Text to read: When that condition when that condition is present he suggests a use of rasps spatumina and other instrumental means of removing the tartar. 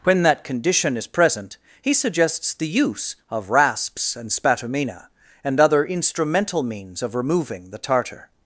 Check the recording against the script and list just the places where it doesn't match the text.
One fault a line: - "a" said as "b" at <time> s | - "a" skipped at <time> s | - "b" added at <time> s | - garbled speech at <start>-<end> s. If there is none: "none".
- "when that condition" skipped at 1.0 s
- "a" said as "the" at 2.5 s
- "and" added at 4.2 s